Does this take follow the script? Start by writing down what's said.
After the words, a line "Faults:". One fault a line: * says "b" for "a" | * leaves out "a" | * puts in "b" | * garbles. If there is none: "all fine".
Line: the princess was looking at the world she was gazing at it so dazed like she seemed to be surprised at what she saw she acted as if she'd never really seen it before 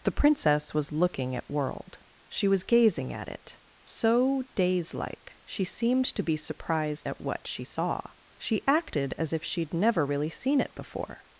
the princess was looking at world she was gazing at it so daze like she seemed to be surprised at what she saw she acted as if she'd never really seen it before
Faults:
* leaves out "the"
* says "daze" for "dazed"